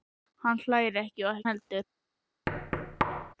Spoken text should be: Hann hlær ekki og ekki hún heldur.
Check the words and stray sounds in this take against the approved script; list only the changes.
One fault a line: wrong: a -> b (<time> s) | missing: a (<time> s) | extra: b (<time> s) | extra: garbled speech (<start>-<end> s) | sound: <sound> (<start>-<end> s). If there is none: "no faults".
missing: ekki hún (1.4 s)
sound: thud (2.5-3.3 s)